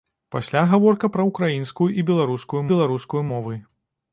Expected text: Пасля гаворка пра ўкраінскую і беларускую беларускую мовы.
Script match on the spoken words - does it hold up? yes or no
yes